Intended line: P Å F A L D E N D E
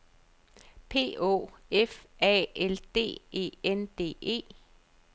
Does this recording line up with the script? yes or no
yes